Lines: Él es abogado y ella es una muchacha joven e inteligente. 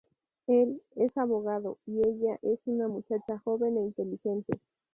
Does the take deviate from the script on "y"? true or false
false